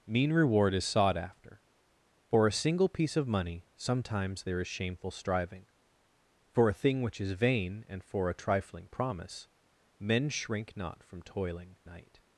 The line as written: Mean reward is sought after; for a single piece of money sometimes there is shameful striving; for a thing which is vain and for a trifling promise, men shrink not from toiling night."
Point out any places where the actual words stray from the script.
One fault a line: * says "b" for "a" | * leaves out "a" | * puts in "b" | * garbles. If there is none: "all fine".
all fine